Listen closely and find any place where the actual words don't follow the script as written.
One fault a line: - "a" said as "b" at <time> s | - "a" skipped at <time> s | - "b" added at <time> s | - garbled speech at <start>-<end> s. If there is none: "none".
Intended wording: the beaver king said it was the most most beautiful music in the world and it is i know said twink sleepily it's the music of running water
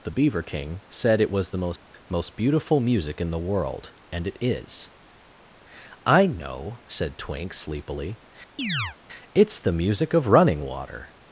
none